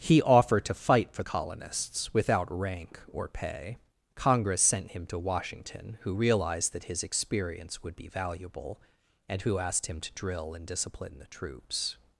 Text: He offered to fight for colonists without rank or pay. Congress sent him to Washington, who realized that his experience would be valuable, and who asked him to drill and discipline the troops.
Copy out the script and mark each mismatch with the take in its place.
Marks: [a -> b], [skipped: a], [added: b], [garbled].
He offered to fight for colonists without rank or pay. Congress sent him to Washington, who realized that his experience would be valuable, and who asked him to drill and discipline the troops.